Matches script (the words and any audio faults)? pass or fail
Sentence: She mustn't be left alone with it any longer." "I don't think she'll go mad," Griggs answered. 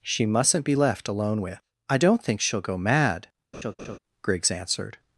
fail